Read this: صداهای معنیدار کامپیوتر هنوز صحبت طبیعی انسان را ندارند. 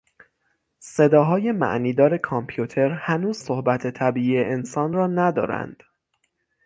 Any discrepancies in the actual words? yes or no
no